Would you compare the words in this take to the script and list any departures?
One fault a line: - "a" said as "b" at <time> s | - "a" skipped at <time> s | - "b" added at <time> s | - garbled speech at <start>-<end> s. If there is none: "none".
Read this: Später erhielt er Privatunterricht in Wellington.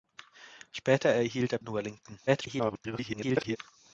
- "Privatunterricht" skipped at 1.6 s
- garbled speech at 2.3-3.6 s